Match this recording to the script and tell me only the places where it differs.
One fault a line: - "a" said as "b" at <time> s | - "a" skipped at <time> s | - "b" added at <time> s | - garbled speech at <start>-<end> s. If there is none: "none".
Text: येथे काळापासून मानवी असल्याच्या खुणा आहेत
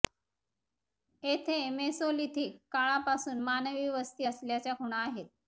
- "मेसोलिथिक" added at 1.7 s
- "वस्ती" added at 3.9 s